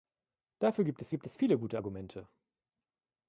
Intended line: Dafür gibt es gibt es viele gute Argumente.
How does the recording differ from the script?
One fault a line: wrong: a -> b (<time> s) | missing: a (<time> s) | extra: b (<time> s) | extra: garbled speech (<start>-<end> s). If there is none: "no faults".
no faults